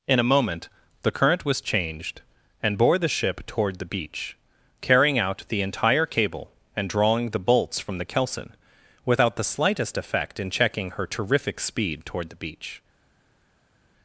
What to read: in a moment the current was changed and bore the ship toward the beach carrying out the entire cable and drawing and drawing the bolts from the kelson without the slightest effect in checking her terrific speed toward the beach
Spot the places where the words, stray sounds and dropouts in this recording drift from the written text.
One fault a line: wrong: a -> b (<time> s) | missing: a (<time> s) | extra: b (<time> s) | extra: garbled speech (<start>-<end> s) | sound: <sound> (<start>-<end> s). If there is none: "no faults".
missing: and drawing (7.3 s)